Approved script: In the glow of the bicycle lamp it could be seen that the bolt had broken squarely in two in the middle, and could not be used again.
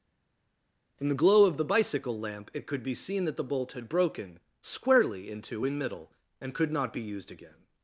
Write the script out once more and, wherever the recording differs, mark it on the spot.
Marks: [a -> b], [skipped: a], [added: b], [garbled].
In the glow of the bicycle lamp it could be seen that the bolt had broken squarely in two in [skipped: the] middle, and could not be used again.